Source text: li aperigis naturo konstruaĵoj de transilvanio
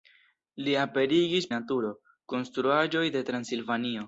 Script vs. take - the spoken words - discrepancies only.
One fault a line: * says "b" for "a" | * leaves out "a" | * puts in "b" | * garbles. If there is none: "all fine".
all fine